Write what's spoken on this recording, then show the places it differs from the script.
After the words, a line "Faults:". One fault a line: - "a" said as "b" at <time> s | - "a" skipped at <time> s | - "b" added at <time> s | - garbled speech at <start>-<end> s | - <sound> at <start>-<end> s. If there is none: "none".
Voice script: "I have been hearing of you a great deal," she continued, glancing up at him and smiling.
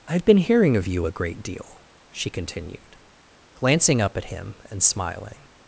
"I have been hearing of you a great deal," she continued, glancing up at him and smiling.
Faults:
none